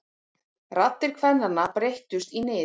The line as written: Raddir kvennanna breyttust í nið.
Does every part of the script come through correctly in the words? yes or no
yes